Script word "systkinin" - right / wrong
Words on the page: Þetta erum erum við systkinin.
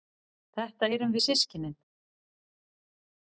right